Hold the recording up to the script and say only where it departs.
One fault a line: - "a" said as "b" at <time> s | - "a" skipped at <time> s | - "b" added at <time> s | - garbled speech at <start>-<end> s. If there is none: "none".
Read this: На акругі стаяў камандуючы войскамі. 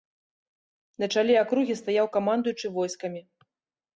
- "чале" added at 1.2 s